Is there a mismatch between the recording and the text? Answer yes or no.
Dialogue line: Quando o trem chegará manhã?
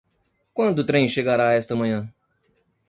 yes